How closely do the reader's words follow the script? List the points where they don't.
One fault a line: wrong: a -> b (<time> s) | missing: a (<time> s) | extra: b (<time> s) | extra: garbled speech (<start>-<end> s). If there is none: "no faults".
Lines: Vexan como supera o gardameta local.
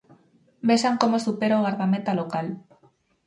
no faults